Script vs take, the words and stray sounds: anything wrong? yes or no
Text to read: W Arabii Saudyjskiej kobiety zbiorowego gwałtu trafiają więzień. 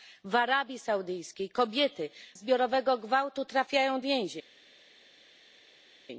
no